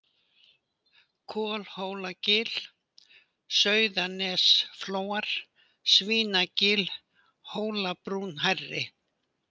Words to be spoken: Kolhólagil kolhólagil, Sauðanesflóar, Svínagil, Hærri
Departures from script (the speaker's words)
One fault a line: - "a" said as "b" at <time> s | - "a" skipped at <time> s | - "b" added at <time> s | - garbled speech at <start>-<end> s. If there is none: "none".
- "kolhólagil" skipped at 2.5 s
- "Hólabrún" added at 7.5 s